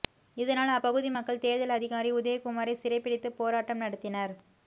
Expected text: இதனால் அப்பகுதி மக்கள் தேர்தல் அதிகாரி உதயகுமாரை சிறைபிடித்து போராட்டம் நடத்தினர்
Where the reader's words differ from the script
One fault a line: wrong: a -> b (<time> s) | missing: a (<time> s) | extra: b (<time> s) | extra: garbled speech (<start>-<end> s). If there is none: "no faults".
no faults